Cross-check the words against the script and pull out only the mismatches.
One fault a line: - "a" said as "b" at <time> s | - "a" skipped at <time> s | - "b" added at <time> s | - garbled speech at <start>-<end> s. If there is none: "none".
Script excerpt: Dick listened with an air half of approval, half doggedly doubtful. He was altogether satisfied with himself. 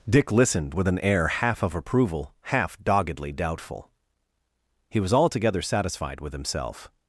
none